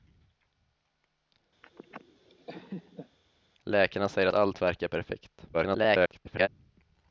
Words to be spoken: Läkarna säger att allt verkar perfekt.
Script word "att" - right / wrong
wrong